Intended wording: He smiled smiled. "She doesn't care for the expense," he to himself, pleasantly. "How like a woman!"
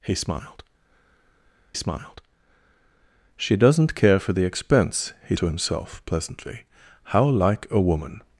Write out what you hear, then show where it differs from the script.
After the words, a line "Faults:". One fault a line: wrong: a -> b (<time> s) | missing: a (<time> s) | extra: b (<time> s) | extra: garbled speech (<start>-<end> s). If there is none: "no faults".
He smiled smiled. "She doesn't care for the expense," he to himself, pleasantly. "How like a woman!"
Faults:
no faults